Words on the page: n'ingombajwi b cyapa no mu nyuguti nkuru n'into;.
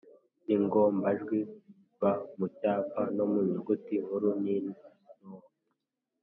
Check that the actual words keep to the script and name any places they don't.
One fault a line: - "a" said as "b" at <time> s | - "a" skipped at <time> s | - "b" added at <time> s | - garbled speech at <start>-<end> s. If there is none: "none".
- "mu" added at 2.4 s